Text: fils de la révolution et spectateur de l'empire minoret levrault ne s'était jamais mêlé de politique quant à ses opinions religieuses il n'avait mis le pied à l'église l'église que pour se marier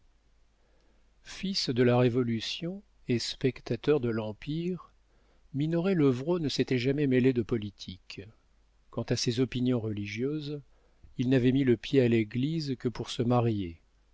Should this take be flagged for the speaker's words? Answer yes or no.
yes